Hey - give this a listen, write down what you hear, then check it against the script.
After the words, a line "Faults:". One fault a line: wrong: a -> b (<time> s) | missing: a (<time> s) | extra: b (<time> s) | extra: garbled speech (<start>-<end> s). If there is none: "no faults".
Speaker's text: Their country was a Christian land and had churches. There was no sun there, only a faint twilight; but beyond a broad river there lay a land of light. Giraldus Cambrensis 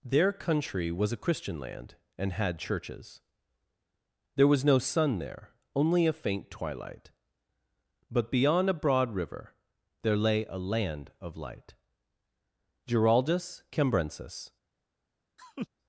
Their country was a Christian land and had churches. There was no sun there, only a faint twilight; but beyond a broad river there lay a land of light. Giraldus Cambrensis
Faults:
no faults